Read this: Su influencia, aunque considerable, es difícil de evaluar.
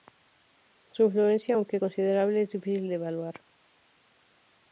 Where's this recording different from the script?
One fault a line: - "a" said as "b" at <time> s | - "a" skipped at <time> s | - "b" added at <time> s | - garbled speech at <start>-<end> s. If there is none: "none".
none